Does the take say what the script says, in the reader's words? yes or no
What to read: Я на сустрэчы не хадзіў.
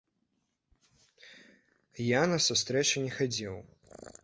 yes